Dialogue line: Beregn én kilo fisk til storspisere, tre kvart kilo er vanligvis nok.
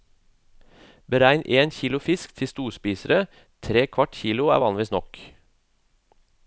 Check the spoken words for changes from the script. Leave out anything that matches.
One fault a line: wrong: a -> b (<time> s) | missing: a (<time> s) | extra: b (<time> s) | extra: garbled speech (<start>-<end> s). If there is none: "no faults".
no faults